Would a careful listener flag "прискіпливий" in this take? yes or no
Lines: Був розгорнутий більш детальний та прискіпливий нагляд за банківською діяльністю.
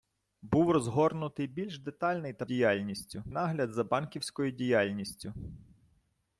yes